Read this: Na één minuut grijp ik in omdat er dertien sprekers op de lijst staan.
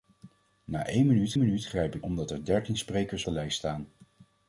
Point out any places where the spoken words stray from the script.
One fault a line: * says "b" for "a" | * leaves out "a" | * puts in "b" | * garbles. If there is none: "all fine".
* puts in "minuut"
* leaves out "in"
* leaves out "op"